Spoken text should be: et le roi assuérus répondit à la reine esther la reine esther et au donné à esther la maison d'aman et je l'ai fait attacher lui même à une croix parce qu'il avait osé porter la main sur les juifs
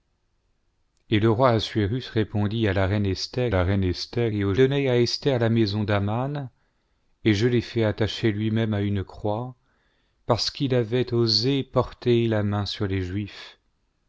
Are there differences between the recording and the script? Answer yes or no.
no